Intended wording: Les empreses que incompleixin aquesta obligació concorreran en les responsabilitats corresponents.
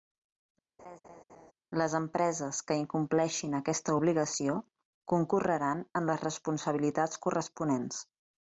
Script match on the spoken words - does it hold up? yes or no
yes